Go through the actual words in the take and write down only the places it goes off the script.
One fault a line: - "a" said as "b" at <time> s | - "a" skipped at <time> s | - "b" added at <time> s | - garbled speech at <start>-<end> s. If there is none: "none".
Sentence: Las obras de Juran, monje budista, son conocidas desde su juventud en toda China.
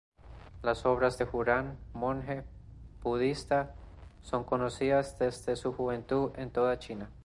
none